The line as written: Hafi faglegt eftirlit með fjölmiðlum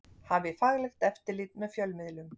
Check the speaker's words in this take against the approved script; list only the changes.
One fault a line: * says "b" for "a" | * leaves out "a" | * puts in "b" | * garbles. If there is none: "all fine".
all fine